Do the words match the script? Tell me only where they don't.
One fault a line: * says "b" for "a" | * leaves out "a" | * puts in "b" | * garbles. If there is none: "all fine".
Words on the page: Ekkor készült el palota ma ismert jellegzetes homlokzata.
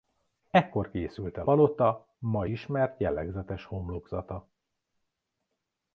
all fine